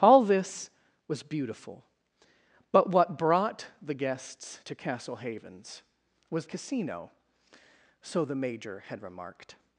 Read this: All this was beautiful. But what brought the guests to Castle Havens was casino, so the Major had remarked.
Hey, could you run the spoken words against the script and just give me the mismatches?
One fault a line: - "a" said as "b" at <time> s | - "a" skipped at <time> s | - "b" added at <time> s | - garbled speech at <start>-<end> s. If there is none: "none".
none